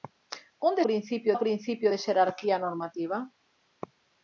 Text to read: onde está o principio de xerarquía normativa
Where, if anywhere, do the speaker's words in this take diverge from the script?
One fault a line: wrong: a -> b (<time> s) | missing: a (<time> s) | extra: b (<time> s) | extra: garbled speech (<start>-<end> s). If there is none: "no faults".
wrong: está -> principio (0.9 s)